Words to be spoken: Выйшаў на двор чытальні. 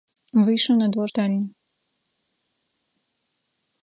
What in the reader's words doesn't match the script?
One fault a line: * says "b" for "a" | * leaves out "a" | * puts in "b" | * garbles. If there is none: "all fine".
all fine